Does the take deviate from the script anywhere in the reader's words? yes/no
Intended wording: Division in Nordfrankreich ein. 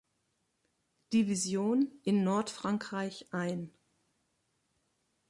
no